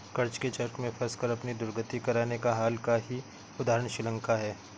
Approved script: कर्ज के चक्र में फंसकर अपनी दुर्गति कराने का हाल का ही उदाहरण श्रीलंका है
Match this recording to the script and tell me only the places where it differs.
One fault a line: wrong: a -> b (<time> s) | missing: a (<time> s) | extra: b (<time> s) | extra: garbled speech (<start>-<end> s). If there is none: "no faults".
no faults